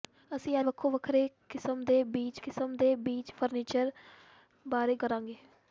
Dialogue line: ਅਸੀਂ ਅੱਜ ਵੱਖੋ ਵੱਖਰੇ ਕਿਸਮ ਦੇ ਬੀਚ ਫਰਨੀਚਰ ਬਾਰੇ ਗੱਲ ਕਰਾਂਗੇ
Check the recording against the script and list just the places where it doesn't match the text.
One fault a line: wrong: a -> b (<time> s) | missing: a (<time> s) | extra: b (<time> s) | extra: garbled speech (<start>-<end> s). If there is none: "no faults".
missing: ਅੱਜ (0.6 s)
extra: ਕਿਸਮ ਦੇ ਬੀਚ (2.4 s)
missing: ਗੱਲ (4.9 s)